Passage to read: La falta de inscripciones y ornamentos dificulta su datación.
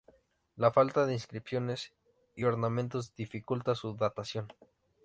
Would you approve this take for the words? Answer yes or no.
yes